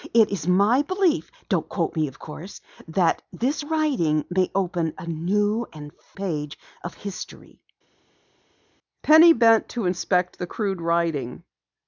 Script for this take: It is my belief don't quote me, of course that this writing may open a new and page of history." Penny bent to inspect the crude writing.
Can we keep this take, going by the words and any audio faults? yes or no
yes